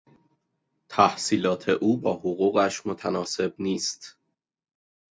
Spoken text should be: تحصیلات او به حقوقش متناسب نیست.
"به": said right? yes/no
no